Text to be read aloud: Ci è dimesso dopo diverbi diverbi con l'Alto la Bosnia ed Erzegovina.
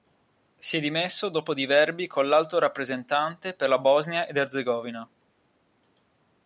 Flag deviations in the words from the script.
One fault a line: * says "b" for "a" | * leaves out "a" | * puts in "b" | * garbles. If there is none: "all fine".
* says "Si" for "Ci"
* leaves out "diverbi"
* puts in "rappresentante per"